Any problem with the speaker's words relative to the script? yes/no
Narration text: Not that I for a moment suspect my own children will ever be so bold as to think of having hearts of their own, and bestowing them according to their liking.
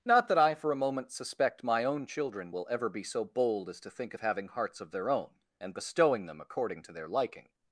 no